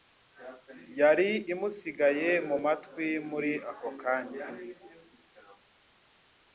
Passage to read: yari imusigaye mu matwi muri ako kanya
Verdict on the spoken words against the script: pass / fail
pass